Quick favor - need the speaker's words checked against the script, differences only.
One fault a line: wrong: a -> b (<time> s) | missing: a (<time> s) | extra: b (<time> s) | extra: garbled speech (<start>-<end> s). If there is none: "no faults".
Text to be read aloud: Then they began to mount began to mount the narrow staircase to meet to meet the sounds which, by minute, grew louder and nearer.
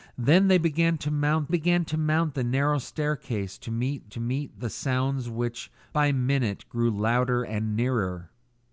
no faults